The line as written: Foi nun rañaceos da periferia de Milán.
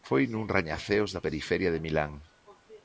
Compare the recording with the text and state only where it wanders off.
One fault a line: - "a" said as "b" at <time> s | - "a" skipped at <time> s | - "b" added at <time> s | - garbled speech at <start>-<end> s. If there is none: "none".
none